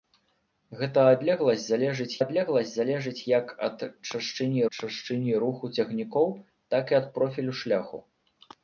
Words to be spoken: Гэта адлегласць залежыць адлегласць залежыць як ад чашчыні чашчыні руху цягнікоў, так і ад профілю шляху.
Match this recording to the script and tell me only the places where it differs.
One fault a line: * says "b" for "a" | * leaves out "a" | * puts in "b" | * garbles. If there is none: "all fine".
all fine